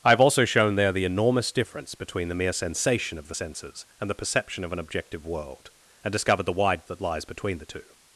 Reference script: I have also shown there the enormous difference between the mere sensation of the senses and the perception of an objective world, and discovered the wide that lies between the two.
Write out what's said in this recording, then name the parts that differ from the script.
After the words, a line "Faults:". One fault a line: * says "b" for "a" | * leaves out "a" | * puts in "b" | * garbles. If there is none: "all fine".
I have also shown there the enormous difference between the mere sensation of the senses and the perception of an objective world, and discovered the wide that lies between the two.
Faults:
all fine